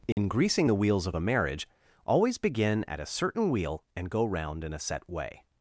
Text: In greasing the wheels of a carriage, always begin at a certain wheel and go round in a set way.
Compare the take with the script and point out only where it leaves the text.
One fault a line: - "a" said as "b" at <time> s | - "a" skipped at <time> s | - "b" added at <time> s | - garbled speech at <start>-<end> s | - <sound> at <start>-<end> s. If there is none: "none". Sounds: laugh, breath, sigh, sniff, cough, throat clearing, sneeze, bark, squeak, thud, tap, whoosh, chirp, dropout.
- dropout at 0.1-0.2 s
- "carriage" said as "marriage" at 1.2 s